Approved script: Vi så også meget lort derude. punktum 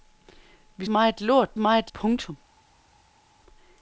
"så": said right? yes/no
no